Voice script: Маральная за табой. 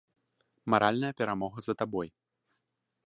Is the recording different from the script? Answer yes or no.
yes